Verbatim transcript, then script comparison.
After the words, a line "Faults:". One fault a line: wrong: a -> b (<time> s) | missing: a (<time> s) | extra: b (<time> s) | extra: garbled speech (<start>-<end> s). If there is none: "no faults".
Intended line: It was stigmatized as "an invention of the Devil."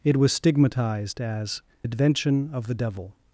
It was stigmatized as "invention of the Devil."
Faults:
missing: an (1.6 s)